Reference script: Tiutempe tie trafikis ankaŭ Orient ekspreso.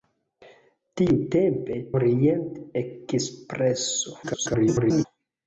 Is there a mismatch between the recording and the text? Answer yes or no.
yes